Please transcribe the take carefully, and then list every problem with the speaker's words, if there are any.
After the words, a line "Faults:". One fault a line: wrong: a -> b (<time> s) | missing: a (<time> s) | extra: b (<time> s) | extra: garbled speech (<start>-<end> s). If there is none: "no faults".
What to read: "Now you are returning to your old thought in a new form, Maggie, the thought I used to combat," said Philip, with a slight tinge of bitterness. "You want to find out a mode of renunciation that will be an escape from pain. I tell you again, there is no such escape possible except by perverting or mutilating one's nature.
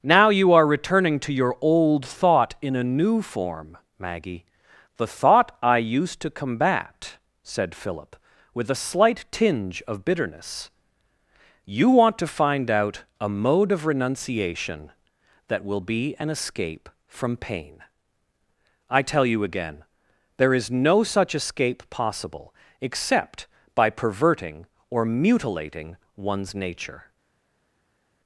"Now you are returning to your old thought in a new form, Maggie, the thought I used to combat," said Philip, with a slight tinge of bitterness. "You want to find out a mode of renunciation that will be an escape from pain. I tell you again, there is no such escape possible except by perverting or mutilating one's nature.
Faults:
no faults